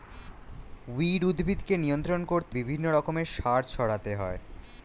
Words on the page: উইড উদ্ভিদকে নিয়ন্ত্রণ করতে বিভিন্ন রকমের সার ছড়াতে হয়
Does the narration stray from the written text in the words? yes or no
no